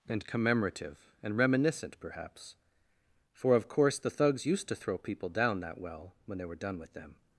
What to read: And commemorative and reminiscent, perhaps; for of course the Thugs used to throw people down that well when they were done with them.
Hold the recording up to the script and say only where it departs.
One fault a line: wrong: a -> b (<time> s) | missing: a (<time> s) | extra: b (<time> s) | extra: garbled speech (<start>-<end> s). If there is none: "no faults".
no faults